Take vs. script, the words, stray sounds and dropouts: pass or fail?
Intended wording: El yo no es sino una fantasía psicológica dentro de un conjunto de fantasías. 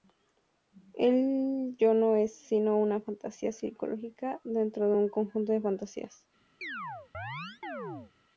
fail